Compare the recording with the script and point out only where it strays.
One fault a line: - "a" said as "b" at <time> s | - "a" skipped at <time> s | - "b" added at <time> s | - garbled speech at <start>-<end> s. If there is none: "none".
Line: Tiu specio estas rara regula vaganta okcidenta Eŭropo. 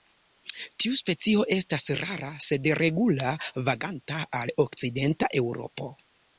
- "sed" added at 2.5 s
- "al" added at 4.4 s